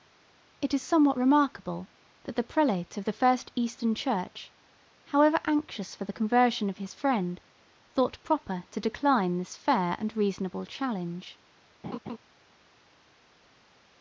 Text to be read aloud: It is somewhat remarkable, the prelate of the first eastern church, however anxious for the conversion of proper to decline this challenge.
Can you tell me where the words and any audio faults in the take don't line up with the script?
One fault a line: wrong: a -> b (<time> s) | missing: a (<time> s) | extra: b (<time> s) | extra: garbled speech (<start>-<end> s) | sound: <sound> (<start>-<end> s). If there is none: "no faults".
extra: that (2.2 s)
extra: his friend thought (6.8 s)
extra: fair and reasonable (9.6 s)
sound: laugh (11.8-12.2 s)